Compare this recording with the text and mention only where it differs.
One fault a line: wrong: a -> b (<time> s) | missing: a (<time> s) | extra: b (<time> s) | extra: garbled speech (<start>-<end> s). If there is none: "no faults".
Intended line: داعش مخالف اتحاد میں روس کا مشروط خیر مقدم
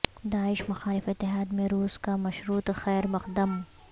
no faults